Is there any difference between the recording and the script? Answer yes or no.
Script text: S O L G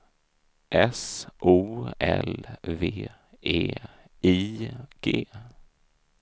yes